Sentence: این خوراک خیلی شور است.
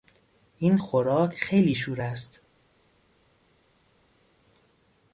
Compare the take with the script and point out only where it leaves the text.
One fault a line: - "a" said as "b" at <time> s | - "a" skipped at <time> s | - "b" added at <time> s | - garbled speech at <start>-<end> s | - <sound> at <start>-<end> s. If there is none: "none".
none